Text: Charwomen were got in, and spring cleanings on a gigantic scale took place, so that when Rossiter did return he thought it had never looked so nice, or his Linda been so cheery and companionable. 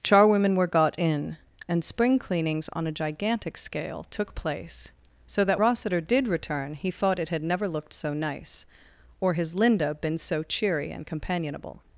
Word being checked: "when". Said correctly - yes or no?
no